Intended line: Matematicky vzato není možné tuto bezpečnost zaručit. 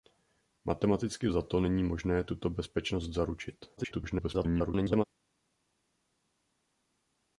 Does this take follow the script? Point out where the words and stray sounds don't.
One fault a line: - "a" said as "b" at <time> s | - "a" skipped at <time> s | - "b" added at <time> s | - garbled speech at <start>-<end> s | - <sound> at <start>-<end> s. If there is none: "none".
- garbled speech at 3.8-5.0 s